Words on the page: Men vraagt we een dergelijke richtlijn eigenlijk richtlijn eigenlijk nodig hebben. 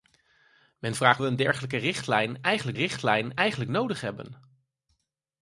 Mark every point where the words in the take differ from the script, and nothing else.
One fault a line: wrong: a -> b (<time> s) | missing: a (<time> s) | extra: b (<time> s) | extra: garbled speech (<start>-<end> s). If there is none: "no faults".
no faults